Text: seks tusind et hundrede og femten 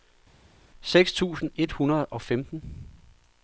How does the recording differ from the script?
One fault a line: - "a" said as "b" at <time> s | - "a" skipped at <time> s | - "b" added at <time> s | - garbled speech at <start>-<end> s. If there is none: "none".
none